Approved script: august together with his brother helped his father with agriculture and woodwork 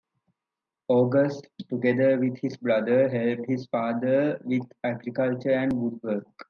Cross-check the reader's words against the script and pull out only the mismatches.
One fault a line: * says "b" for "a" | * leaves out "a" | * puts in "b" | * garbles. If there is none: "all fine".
all fine